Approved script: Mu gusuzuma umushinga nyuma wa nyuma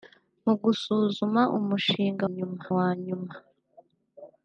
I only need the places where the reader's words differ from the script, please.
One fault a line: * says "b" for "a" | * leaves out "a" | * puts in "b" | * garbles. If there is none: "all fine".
all fine